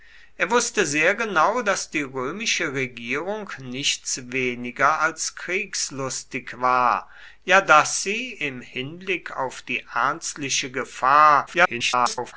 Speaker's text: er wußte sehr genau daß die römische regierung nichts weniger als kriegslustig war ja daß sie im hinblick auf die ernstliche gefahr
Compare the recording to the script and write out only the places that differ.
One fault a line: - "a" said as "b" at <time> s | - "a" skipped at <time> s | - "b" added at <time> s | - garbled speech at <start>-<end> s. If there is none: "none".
- garbled speech at 11.5-12.3 s